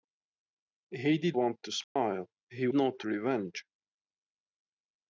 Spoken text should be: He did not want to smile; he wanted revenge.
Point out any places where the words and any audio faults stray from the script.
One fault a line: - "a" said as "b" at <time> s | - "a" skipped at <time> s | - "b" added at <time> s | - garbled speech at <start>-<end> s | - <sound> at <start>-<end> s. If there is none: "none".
- "not" skipped at 1.4 s
- dropout at 1.8-2.0 s
- "wanted" said as "not" at 2.7 s